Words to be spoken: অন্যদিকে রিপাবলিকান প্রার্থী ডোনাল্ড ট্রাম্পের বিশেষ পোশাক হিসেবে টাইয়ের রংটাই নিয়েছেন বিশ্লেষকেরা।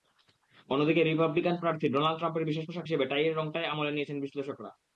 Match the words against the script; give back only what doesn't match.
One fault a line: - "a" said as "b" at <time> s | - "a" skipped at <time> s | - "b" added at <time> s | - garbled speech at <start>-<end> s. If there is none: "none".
- "আমলে" added at 3.7 s